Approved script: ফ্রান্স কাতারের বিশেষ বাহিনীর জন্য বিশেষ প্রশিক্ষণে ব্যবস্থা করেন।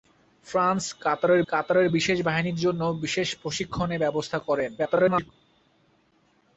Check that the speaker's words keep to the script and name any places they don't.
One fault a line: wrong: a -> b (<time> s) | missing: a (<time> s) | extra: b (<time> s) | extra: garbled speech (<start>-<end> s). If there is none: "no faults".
extra: কাতারের (1.5 s)
extra: garbled speech (4.8-5.3 s)